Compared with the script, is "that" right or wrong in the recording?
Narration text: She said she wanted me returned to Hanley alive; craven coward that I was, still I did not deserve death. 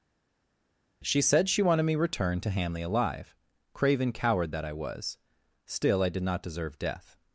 right